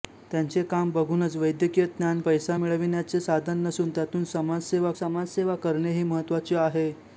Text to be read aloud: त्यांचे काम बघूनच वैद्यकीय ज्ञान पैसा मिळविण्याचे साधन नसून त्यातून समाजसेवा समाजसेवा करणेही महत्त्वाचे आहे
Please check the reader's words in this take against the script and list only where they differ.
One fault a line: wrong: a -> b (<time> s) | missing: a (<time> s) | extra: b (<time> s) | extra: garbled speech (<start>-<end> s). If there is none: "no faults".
no faults